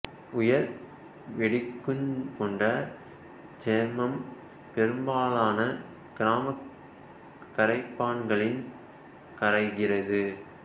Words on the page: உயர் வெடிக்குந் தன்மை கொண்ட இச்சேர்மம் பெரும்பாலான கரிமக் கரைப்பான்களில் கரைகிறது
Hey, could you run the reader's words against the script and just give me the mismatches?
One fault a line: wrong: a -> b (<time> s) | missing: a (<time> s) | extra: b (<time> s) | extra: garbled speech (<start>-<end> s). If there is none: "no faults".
missing: தன்மை (2.1 s)